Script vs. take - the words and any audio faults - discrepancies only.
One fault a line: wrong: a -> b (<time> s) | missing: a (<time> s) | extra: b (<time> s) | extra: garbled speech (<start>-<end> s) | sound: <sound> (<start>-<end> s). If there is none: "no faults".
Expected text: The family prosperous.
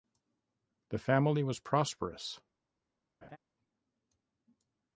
extra: was (1.4 s)
sound: laugh (3.2-3.4 s)